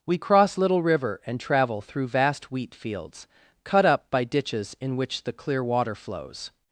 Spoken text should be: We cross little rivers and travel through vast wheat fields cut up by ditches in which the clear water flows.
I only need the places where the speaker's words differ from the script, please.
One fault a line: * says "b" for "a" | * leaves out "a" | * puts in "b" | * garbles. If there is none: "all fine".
* says "river" for "rivers"